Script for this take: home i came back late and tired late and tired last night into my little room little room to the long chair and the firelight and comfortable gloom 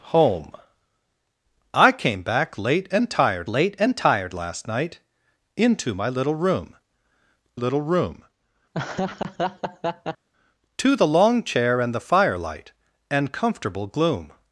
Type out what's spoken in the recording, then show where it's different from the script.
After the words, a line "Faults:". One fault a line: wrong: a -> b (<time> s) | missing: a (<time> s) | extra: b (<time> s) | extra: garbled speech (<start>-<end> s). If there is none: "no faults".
home i came back late and tired late and tired last night into my little room little room to the long chair and the firelight and comfortable gloom
Faults:
no faults